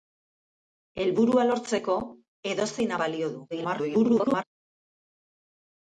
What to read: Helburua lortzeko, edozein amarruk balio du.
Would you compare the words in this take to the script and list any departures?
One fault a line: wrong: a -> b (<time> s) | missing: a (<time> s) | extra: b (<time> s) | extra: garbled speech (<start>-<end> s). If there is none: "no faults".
missing: amarruk (2.9 s)
extra: garbled speech (3.5-4.4 s)